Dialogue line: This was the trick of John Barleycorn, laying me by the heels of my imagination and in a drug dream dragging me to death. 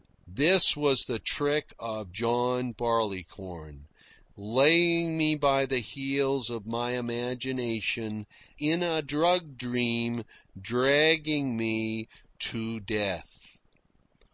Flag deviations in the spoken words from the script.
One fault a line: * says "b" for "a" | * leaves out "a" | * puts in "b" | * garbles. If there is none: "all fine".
* leaves out "and"